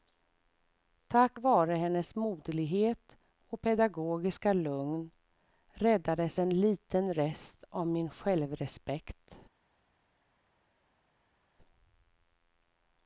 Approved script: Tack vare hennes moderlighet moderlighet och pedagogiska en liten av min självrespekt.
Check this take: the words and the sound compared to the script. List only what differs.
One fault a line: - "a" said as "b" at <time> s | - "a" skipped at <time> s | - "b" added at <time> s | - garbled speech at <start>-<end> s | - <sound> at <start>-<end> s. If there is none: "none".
- "moderlighet" skipped at 3.2 s
- "lugn räddades" added at 4.5 s
- "rest" added at 7.1 s